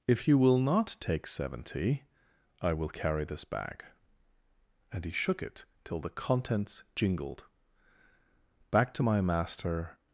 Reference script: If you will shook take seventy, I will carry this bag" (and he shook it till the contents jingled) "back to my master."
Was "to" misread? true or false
false